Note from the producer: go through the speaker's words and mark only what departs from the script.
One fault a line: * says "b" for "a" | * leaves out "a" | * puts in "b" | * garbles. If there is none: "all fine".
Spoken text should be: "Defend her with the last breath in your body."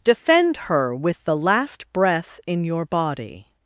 all fine